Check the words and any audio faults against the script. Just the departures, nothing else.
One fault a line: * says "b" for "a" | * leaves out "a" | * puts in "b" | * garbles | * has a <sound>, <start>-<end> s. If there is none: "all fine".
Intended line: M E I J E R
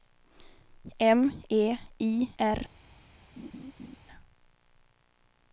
* leaves out "J E"
* has a laugh, 3.4-4.0 s